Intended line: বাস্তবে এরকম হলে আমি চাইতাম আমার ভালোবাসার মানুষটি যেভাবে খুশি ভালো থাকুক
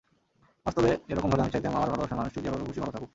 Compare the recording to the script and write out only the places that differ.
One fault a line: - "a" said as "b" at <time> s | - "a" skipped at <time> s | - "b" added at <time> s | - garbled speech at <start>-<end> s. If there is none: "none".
none